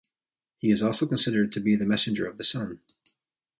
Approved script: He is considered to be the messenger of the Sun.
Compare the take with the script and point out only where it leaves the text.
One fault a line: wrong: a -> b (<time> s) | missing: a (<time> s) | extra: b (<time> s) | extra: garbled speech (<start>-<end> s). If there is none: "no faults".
extra: also (0.8 s)